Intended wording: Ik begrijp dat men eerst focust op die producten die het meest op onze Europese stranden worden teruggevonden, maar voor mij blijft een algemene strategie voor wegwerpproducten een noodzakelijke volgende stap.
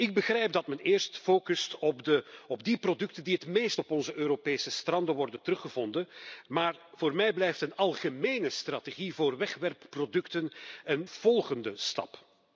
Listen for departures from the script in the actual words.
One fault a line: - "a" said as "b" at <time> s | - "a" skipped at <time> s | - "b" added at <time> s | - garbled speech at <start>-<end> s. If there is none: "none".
- "noodzakelijke" skipped at 11.0 s